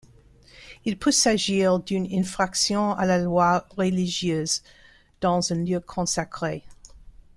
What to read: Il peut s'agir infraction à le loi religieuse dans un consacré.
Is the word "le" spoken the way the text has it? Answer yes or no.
no